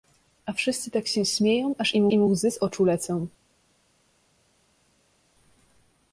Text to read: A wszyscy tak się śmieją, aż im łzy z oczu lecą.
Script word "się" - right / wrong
right